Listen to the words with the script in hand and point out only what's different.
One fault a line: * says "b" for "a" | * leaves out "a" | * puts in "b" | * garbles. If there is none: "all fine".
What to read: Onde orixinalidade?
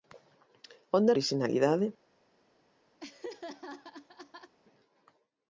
all fine